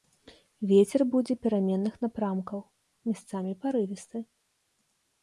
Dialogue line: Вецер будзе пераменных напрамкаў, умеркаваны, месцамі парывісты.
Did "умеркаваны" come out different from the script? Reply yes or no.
yes